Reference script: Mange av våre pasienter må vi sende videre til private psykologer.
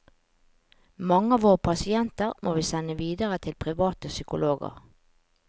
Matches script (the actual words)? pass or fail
pass